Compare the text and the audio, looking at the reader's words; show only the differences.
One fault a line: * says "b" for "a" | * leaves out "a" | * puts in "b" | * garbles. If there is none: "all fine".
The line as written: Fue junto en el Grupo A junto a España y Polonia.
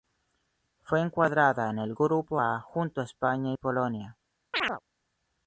* says "encuadrada" for "junto"